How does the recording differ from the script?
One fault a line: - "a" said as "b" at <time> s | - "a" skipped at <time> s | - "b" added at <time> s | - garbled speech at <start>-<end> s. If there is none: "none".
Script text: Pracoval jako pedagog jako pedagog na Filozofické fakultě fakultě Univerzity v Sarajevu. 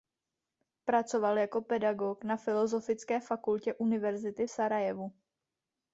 - "jako pedagog" skipped at 2.2 s
- "fakultě" skipped at 3.7 s